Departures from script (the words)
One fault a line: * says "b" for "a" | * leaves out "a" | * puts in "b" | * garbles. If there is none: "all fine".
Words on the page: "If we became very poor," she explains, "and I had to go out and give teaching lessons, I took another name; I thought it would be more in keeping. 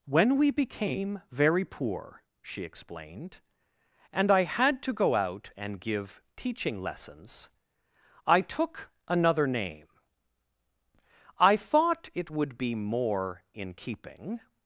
* says "When" for "If"
* says "explained" for "explains"